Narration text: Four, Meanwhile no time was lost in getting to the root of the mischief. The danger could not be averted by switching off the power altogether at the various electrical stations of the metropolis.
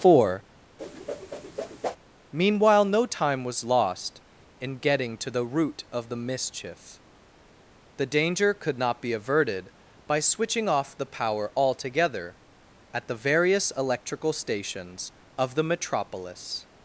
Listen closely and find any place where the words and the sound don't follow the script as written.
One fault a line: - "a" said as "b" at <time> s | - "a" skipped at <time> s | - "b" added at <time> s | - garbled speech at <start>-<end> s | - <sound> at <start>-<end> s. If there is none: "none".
- whoosh at 0.8-2.0 s